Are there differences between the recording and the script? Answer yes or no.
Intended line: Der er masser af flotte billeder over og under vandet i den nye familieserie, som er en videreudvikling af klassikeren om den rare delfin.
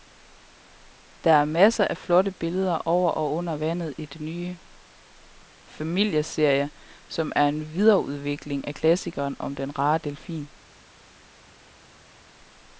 no